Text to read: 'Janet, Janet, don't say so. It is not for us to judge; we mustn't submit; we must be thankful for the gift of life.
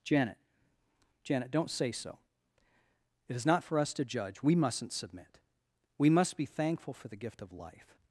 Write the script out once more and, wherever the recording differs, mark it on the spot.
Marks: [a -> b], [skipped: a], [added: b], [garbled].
'Janet, Janet, don't say so. It is not for us to judge; we mustn't submit; we must be thankful for the gift of life.